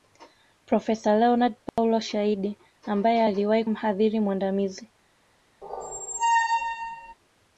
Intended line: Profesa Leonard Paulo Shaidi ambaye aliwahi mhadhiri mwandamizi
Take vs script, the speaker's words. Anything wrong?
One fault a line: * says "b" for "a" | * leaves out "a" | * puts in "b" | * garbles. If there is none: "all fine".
all fine